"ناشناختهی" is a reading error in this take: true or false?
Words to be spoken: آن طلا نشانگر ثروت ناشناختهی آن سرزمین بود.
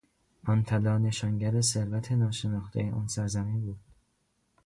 false